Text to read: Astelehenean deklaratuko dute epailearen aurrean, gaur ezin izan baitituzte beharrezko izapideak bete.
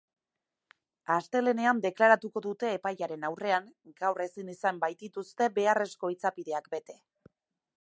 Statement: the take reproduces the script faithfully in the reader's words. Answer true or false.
true